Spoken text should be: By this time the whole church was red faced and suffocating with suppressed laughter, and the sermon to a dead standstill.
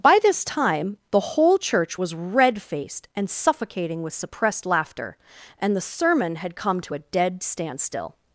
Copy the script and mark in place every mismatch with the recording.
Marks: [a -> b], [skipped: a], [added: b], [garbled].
By this time the whole church was red faced and suffocating with suppressed laughter, and the sermon [added: had come] to a dead standstill.